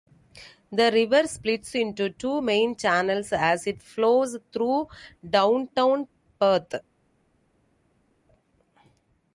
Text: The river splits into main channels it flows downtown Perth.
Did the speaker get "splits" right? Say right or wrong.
right